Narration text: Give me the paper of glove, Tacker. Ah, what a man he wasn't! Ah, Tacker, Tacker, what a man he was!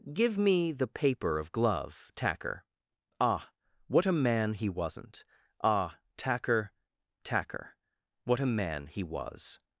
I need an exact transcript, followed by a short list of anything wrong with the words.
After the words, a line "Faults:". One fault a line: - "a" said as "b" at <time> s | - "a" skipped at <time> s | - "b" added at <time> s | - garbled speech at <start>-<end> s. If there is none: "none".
Give me the paper of glove, Tacker. Ah, what a man he wasn't! Ah, Tacker, Tacker, what a man he was!
Faults:
none